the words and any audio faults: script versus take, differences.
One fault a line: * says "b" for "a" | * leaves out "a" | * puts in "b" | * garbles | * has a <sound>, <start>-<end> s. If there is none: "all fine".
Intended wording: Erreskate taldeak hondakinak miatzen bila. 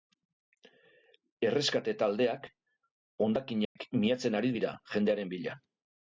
* has a dropout, 3.6-3.8 s
* puts in "ari dira jendearen"